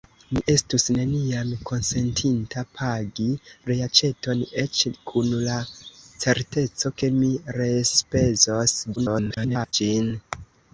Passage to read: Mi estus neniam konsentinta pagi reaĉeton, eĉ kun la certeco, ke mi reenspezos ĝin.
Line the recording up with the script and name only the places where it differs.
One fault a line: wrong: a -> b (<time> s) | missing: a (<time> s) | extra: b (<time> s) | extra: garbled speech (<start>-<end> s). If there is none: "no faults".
extra: garbled speech (9.0-9.7 s)